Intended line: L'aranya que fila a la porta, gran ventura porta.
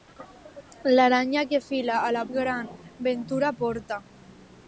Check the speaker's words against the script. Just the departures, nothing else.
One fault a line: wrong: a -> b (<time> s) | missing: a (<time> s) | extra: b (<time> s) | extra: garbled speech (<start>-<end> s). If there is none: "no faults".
missing: porta (2.2 s)